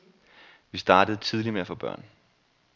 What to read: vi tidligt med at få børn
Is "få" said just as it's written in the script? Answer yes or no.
yes